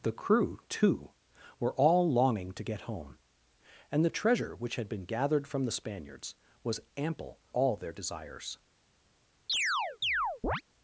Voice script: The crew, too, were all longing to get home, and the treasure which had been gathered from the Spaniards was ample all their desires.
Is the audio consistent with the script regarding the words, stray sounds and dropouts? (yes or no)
no